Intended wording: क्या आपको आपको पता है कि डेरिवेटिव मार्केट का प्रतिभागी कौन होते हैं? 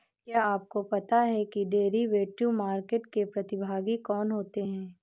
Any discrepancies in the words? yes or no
yes